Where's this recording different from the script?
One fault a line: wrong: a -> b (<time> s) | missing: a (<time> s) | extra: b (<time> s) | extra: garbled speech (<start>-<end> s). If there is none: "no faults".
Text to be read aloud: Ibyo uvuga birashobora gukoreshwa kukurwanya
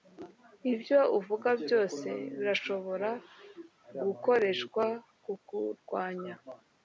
extra: byose (1.6 s)